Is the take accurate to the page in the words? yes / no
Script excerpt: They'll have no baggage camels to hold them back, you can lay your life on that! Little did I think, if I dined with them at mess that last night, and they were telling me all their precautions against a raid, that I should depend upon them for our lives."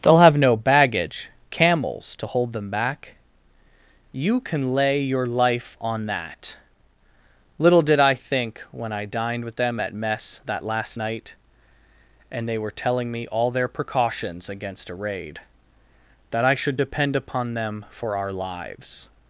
no